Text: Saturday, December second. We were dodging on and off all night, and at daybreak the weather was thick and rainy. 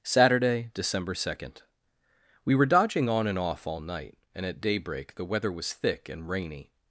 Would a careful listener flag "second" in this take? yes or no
no